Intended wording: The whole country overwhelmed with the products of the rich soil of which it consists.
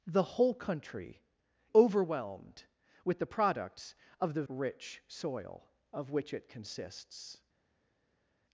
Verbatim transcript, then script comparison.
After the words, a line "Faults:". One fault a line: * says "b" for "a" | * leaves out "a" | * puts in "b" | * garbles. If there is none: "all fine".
The whole country overwhelmed with the products of the rich soil of which it consists.
Faults:
all fine